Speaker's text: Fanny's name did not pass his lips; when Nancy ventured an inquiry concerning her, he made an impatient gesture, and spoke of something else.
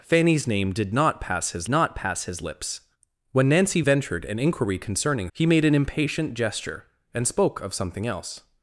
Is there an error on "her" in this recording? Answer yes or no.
yes